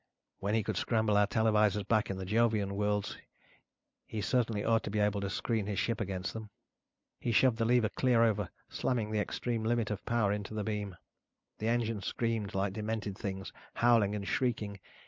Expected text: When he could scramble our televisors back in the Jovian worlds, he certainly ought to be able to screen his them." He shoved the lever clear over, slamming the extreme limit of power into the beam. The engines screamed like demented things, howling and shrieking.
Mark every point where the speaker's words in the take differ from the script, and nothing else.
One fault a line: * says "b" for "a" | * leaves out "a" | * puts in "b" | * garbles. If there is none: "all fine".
* puts in "ship against"